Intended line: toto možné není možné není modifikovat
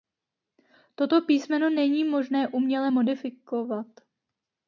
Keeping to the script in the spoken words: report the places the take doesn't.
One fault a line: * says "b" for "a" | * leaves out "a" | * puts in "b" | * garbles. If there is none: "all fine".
* says "písmeno" for "možné"
* says "uměle" for "není"